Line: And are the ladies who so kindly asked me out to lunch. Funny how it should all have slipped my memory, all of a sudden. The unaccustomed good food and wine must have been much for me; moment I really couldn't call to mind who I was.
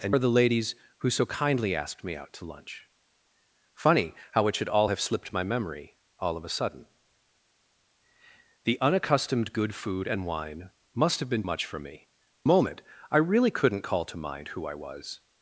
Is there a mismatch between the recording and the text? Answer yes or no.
no